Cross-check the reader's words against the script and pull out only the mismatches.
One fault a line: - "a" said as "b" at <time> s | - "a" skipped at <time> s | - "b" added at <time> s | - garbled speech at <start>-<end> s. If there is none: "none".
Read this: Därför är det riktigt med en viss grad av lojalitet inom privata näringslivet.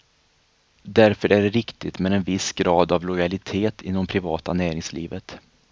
none